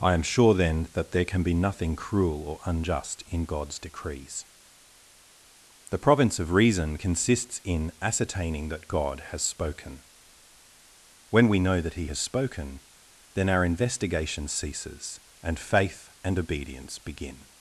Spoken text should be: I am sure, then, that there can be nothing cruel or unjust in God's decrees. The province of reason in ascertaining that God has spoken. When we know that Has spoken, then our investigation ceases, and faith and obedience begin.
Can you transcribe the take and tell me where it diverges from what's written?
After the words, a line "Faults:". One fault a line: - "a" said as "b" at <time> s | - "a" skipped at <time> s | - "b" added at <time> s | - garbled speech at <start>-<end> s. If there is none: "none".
I am sure, then, that there can be nothing cruel or unjust in God's decrees. The province of reason consists in ascertaining that God has spoken. When we know that He has spoken, then our investigation ceases, and faith and obedience begin.
Faults:
- "consists" added at 6.9 s
- "He" added at 11.9 s